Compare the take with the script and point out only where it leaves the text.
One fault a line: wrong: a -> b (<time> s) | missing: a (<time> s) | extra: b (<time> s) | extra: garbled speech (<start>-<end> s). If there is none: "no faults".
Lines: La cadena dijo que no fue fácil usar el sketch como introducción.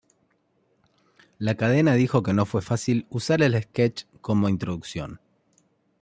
no faults